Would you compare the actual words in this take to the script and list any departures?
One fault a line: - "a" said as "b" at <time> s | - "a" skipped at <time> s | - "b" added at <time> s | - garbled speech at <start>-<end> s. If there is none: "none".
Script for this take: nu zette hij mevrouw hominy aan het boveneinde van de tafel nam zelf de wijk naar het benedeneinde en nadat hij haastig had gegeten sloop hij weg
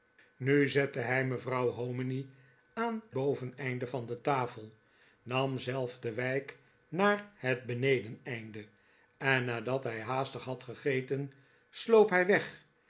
- "het" skipped at 3.0 s